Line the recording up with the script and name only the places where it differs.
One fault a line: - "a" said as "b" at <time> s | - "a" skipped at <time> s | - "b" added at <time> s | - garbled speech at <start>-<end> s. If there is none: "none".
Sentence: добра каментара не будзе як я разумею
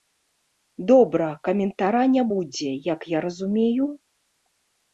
none